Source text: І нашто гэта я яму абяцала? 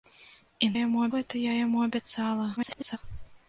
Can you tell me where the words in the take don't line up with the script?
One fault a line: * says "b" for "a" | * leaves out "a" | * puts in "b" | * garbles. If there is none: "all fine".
* says "яму" for "нашто"
* garbles